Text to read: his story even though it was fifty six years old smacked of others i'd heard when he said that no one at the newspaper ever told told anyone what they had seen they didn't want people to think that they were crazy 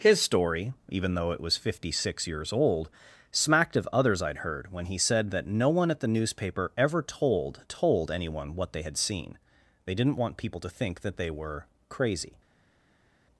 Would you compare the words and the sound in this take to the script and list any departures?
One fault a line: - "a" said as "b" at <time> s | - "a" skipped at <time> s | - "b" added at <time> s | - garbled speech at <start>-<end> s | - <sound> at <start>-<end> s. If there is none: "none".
none